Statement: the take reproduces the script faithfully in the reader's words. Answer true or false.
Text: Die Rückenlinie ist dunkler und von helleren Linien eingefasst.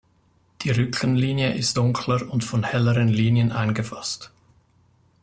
true